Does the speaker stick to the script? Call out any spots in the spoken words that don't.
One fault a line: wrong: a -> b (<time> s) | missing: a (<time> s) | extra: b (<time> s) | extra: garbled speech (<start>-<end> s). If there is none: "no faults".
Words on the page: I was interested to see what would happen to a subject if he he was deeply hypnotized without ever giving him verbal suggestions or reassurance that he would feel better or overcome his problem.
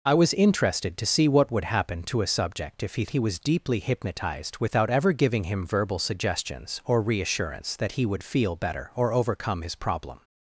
no faults